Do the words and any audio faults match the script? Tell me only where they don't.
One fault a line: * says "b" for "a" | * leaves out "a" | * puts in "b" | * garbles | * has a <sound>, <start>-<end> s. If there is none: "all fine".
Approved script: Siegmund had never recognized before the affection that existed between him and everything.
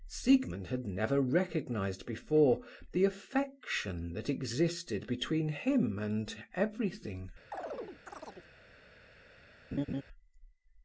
* has a chirp, 7.5-8.5 s
* has a laugh, 9.7-10.0 s